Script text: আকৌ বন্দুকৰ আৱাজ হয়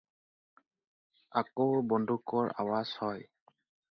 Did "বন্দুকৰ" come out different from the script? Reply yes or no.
no